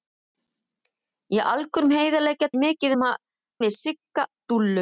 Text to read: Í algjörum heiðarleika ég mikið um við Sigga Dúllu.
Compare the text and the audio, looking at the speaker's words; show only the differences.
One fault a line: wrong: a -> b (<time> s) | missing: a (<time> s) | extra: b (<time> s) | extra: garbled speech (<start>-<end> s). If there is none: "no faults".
no faults